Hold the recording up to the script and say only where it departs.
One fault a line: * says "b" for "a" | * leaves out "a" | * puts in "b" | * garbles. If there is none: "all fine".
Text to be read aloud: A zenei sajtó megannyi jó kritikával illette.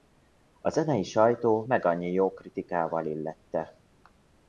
all fine